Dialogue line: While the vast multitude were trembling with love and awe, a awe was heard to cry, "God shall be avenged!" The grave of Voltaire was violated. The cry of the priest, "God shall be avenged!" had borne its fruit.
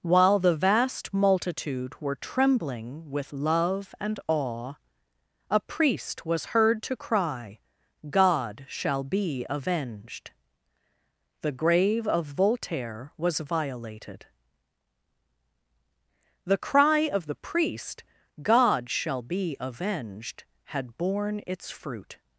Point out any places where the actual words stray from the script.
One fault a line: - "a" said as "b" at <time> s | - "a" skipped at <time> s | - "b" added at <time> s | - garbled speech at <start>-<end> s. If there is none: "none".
- "awe" said as "priest" at 5.6 s